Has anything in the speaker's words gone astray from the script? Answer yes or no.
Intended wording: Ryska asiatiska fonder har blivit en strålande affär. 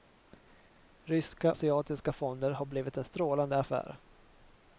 no